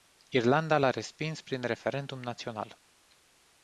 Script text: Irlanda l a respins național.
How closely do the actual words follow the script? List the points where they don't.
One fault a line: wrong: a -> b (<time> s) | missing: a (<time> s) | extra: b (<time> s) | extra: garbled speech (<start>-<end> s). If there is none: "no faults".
extra: prin referendum (1.4 s)